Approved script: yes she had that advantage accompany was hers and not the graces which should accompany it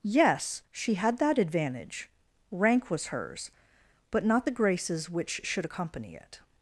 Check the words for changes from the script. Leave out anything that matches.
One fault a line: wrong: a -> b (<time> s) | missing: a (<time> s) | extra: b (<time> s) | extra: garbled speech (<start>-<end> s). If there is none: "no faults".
wrong: accompany -> rank (2.5 s)
wrong: and -> but (4.1 s)